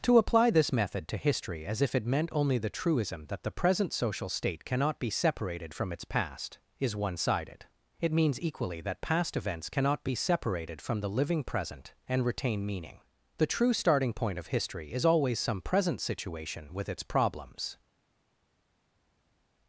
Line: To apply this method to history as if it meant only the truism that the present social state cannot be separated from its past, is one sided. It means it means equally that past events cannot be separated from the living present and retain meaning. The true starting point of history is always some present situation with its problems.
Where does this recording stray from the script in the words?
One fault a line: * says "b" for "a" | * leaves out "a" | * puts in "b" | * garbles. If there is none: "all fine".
* leaves out "it means"